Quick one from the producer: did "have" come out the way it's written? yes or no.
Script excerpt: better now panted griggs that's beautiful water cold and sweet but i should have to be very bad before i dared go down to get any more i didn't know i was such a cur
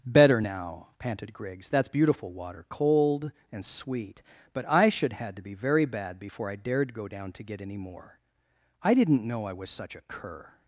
no